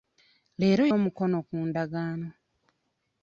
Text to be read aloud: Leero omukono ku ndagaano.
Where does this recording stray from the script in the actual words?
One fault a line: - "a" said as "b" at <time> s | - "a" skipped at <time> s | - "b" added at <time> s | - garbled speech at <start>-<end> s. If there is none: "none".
none